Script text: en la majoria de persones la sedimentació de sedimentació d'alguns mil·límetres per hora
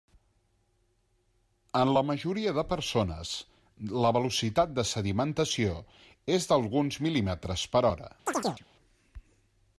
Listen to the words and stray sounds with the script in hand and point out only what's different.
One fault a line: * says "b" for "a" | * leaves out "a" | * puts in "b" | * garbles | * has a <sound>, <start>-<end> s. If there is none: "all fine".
* says "velocitat" for "sedimentació"
* puts in "és"
* has a chirp, 8.3-8.7 s